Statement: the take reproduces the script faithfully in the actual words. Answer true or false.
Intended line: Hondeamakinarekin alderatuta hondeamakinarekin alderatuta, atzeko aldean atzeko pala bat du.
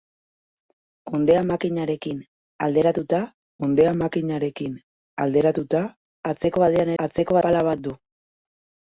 true